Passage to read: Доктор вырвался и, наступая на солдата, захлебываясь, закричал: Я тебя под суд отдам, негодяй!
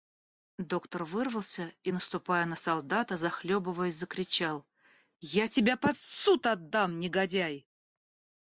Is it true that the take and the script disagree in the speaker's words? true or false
false